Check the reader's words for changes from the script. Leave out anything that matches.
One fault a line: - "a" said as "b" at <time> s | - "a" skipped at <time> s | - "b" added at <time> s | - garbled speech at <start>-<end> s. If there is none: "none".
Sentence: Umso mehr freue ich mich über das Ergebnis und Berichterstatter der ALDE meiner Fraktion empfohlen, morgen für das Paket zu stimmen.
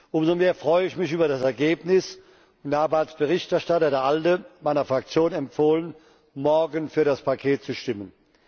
- "habe als" added at 2.8 s